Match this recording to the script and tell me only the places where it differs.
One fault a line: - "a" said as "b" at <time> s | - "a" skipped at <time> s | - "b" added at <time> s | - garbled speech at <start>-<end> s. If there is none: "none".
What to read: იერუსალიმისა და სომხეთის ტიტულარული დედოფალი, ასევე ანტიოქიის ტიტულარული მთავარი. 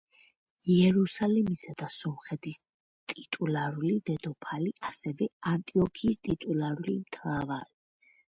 none